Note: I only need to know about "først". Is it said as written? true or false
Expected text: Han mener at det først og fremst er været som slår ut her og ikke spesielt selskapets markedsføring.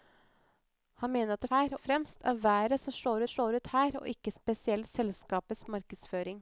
false